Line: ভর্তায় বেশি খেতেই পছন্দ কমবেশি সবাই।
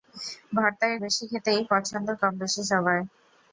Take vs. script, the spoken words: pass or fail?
pass